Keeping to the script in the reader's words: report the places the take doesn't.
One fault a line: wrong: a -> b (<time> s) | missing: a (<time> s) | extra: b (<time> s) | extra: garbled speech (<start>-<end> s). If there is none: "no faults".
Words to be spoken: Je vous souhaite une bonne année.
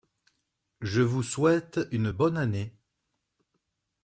no faults